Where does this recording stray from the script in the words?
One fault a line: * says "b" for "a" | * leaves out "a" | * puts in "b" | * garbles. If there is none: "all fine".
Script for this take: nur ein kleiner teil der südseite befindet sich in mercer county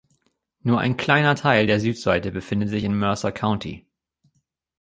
all fine